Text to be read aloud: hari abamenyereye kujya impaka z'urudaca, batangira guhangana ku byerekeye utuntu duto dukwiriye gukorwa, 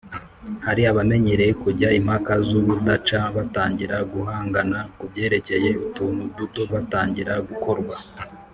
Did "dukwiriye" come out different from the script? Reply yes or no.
yes